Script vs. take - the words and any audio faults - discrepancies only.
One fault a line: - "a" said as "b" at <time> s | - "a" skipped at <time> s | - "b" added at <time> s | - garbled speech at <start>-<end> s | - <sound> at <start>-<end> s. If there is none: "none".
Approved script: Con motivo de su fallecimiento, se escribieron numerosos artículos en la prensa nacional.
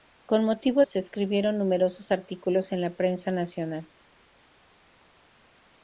- "de su fallecimiento" skipped at 0.8 s